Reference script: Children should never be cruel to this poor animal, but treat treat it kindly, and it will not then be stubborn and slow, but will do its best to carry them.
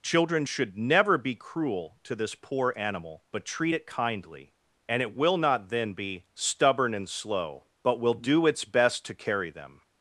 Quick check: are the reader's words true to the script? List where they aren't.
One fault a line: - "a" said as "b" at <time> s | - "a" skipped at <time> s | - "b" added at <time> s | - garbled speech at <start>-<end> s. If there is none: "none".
- "treat" skipped at 3.7 s